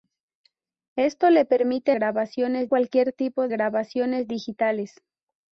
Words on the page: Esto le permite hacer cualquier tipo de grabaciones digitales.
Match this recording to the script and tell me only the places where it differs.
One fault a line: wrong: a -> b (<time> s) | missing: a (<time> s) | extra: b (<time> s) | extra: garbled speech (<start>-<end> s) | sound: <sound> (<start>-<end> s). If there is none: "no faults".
wrong: hacer -> grabaciones (1.9 s)
missing: de (3.5 s)